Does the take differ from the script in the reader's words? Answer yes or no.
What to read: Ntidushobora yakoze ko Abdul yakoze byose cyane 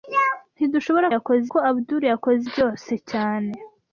no